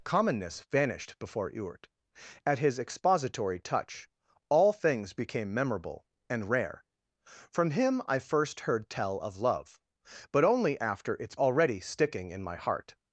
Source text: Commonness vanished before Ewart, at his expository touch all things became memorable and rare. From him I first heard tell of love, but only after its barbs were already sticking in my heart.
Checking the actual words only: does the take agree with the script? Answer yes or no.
no